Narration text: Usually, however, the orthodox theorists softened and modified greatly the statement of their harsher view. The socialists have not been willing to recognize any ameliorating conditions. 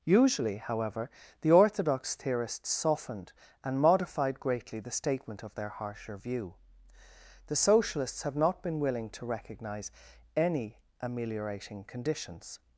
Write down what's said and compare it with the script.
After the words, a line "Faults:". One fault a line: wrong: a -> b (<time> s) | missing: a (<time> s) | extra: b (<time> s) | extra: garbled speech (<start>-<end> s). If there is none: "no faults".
Usually, however, the orthodox theorists softened and modified greatly the statement of their harsher view. The socialists have not been willing to recognize any ameliorating conditions.
Faults:
no faults